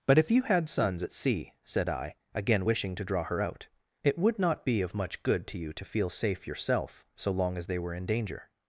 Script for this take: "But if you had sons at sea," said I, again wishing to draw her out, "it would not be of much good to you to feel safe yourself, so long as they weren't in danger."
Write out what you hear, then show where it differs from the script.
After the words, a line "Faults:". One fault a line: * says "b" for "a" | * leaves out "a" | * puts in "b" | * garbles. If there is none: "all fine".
"But if you had sons at sea," said I, again wishing to draw her out, "it would not be of much good to you to feel safe yourself, so long as they were in danger."
Faults:
* says "were" for "weren't"